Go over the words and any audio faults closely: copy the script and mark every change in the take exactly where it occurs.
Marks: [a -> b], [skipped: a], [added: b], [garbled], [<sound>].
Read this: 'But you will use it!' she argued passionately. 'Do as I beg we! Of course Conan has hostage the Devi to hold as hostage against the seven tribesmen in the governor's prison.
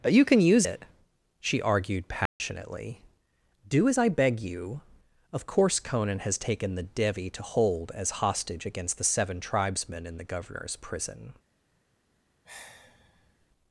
'But you [will -> can] use it!' she argued passionately. [dropout] 'Do as I beg [we! -> you] Of course Conan has [hostage -> taken] the Devi to hold as hostage against the seven tribesmen in the governor's prison. [sigh]